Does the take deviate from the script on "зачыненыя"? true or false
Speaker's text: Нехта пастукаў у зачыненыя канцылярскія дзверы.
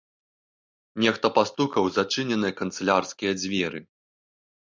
false